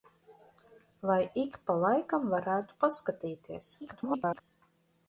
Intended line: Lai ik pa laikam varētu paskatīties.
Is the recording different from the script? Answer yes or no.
yes